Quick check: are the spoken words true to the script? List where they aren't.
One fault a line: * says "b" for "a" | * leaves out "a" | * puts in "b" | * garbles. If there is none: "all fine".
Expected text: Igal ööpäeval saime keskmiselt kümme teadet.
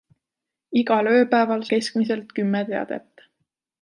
* leaves out "saime"